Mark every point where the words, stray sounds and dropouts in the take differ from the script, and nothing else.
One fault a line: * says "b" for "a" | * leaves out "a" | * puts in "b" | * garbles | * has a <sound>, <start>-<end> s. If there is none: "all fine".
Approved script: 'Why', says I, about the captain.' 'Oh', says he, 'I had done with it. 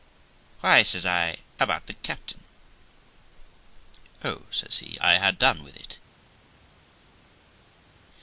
all fine